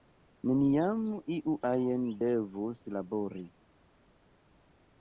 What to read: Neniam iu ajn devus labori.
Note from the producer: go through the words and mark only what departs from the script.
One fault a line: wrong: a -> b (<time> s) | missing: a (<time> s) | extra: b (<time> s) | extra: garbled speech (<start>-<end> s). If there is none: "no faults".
no faults